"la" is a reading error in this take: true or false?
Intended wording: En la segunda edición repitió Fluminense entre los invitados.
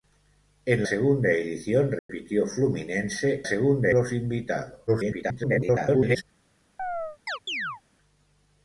true